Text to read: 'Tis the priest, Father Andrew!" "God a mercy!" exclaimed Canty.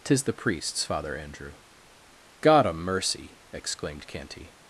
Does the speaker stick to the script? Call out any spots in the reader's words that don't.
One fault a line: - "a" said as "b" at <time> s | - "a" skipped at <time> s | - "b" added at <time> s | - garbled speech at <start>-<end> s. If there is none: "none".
- "priest" said as "priests" at 0.3 s